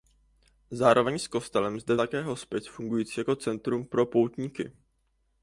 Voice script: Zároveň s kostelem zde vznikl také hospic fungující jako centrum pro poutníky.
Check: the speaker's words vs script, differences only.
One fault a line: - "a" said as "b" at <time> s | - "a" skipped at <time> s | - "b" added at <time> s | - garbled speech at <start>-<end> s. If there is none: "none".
- "vznikl" skipped at 1.9 s